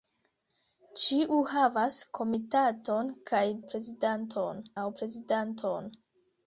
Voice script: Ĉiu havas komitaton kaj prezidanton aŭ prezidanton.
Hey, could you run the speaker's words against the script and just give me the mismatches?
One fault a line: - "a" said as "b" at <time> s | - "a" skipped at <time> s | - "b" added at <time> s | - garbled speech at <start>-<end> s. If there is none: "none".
none